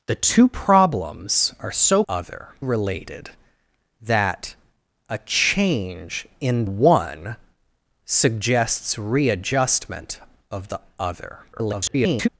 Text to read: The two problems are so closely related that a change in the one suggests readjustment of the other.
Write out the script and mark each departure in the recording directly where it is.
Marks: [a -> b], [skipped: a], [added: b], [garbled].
The two problems are so [closely -> other] related that a change in [skipped: the] one suggests readjustment of the other. [garbled]